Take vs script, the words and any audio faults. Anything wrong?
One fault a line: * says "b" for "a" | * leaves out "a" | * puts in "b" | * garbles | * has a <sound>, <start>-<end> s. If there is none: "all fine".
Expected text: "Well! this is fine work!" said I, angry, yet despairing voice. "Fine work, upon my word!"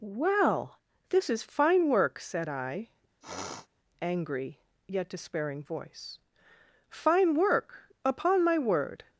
* has a sniff, 3.2-3.7 s